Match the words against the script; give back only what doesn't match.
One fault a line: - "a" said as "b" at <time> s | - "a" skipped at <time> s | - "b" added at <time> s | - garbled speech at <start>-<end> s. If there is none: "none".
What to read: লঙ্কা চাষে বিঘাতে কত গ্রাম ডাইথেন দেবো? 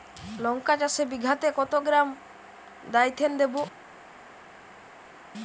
none